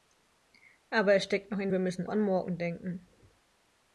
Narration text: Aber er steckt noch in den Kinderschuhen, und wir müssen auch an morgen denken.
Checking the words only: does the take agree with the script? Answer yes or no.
no